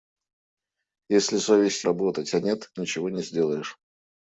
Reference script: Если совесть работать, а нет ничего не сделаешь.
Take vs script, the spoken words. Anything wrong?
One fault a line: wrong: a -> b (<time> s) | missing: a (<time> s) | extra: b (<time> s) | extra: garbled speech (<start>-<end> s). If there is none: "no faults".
no faults